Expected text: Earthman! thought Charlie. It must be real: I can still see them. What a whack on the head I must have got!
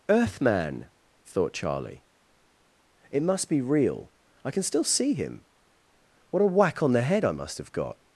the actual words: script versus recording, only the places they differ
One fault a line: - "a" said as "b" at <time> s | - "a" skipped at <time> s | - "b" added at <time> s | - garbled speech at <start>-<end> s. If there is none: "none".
- "them" said as "him" at 5.1 s